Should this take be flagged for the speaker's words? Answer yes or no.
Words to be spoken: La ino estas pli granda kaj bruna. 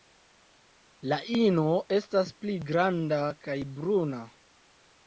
no